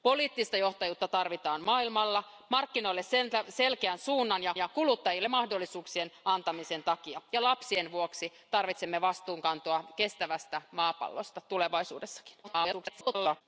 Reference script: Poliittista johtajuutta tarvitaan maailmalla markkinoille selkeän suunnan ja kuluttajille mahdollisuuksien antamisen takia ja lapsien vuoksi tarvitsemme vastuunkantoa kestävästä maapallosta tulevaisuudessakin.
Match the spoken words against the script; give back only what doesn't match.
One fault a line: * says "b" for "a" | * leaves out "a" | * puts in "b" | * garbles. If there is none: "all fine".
* puts in "ja"
* garbles